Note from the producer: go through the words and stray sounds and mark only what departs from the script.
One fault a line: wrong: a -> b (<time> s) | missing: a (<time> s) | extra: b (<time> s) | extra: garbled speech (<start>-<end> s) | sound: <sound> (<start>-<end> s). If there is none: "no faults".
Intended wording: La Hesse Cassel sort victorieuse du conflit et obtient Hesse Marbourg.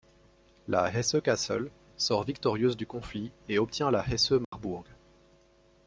extra: la (3.9 s)
sound: dropout (4.4-4.5 s)